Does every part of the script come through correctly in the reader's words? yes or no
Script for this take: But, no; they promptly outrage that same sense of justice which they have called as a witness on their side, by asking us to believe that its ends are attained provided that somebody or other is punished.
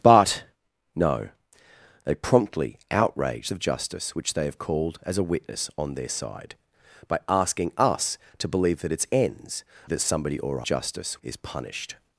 no